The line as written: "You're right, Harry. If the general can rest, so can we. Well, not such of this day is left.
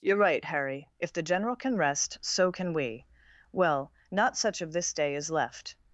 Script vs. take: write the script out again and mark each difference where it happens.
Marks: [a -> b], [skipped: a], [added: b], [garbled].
"You're right, Harry. If the general can rest, so can we. Well, not such of this day is left.